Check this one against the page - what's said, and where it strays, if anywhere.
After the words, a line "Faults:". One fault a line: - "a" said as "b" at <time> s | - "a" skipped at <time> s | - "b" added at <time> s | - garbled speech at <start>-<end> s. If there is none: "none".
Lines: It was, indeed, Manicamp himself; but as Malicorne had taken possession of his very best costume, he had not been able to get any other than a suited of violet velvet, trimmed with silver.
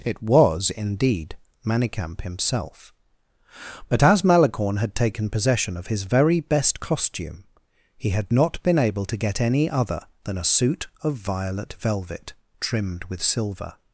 It was, indeed, Manicamp himself; but as Malicorne had taken possession of his very best costume, he had not been able to get any other than a suit of violet velvet, trimmed with silver.
Faults:
- "suited" said as "suit" at 10.4 s